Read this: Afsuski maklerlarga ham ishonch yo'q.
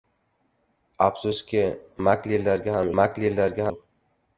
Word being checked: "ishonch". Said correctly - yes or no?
no